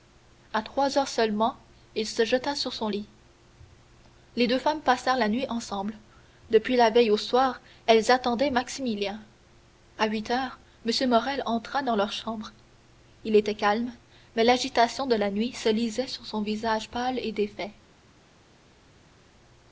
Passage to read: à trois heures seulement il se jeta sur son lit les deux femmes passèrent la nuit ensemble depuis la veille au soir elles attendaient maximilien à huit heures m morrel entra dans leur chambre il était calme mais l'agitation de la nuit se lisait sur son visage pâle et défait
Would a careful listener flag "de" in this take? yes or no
no